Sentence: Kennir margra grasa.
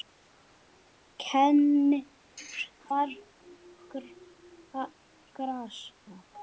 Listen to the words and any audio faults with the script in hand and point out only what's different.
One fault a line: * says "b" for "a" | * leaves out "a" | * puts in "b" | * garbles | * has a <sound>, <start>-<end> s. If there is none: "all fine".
all fine